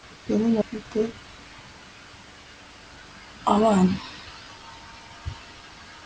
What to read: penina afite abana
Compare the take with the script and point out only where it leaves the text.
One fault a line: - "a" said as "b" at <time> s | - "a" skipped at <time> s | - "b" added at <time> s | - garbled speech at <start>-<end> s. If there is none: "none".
none